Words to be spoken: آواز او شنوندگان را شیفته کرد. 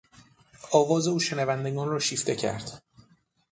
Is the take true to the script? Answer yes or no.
yes